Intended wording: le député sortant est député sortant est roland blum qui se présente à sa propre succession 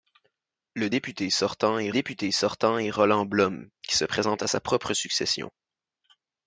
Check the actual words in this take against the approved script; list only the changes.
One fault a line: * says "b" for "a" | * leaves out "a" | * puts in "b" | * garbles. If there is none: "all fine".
all fine